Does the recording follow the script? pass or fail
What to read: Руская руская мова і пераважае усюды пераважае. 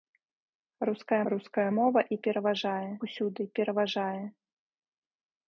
pass